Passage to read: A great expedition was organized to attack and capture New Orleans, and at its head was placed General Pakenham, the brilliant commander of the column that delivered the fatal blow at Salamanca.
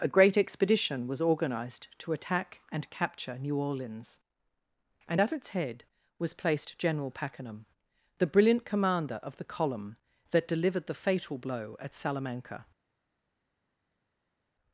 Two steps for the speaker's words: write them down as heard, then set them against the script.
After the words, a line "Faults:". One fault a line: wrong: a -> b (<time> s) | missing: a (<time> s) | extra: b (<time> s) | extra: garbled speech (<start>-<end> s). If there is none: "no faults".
A great expedition was organized to attack and capture New Orleans, and at its head was placed General Pakenham, the brilliant commander of the column that delivered the fatal blow at Salamanca.
Faults:
no faults